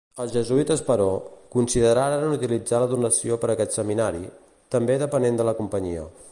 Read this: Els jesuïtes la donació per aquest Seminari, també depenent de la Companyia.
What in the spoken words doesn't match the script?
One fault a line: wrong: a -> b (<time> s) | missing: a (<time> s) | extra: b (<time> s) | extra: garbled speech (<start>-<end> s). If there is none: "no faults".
extra: però consideraren utilitzar (0.9 s)